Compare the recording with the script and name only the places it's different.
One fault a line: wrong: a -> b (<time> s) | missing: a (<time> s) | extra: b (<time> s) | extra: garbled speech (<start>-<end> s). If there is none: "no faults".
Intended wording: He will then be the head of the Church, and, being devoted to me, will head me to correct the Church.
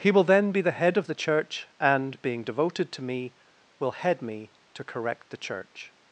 no faults